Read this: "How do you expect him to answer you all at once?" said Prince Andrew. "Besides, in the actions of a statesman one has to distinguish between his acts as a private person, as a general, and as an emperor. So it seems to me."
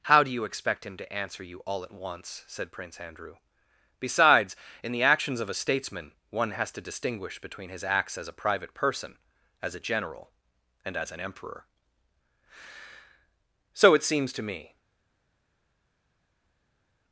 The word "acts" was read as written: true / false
true